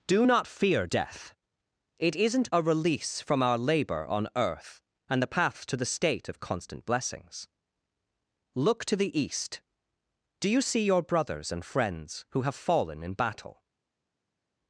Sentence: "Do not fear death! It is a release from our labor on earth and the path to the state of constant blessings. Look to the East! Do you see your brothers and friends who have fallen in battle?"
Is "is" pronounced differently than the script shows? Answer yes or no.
yes